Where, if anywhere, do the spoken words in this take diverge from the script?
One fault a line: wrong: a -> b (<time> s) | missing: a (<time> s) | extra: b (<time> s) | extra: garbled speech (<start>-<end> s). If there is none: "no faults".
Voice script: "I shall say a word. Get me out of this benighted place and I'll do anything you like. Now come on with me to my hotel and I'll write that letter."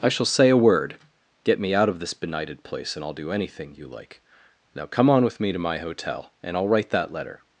no faults